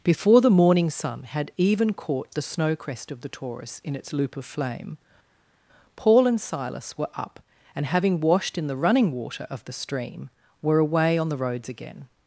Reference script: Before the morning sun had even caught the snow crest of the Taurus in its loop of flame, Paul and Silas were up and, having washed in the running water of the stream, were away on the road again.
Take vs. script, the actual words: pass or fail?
fail